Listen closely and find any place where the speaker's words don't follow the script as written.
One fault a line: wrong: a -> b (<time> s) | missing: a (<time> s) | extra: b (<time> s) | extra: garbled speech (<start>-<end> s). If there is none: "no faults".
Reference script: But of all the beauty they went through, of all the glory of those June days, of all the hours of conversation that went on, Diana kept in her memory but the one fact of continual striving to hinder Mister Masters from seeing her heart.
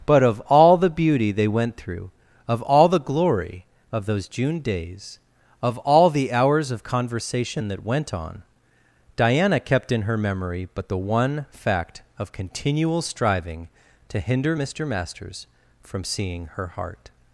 no faults